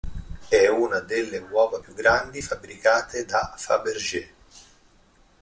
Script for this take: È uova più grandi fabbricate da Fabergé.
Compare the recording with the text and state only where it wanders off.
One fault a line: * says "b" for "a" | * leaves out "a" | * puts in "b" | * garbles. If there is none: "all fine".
* puts in "una delle"